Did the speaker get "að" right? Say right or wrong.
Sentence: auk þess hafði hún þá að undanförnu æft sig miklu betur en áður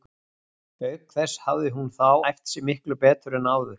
wrong